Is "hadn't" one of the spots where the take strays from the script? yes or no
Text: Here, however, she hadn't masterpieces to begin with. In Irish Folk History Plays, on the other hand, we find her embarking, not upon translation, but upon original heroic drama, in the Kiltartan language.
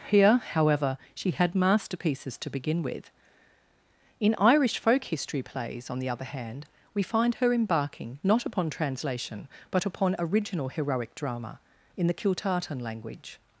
yes